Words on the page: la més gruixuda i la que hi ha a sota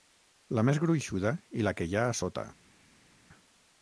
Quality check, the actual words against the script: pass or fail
pass